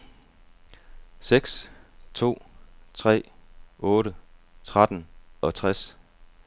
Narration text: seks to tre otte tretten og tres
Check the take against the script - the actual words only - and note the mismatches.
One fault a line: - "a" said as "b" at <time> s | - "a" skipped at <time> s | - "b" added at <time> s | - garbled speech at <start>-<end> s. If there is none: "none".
none